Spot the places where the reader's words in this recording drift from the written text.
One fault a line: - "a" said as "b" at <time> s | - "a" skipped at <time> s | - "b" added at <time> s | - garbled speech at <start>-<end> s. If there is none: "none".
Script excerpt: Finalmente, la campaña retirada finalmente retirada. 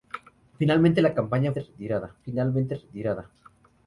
none